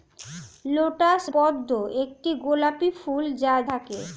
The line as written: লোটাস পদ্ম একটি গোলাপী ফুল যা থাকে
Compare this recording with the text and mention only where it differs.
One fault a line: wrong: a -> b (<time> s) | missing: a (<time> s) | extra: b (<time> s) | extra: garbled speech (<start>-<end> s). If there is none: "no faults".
no faults